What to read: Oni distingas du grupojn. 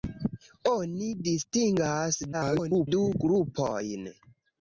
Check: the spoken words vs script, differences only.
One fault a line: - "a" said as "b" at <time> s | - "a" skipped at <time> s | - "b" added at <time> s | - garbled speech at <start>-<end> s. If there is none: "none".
- garbled speech at 2.3-2.9 s